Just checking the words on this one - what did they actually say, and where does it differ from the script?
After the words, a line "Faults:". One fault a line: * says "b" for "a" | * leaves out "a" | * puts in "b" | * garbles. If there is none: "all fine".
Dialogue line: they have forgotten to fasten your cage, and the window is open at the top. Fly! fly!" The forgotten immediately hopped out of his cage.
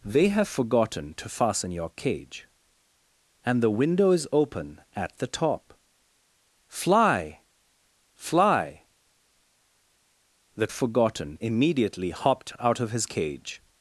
they have forgotten to fasten your cage, and the window is open at the top. Fly! fly!" The forgotten immediately hopped out of his cage.
Faults:
all fine